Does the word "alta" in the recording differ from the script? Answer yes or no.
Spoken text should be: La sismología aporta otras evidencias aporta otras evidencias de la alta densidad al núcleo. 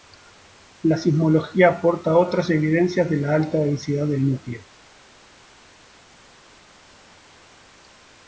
no